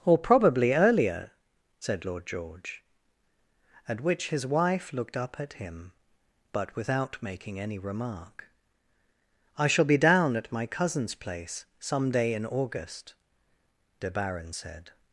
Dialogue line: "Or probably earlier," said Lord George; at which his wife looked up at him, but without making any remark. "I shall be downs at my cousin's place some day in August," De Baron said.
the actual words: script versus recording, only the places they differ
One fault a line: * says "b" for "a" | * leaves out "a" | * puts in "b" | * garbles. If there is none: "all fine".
* says "down" for "downs"